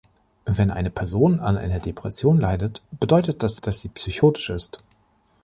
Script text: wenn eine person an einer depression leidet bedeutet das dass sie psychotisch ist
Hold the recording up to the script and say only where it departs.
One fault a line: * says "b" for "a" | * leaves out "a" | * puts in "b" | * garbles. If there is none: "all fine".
all fine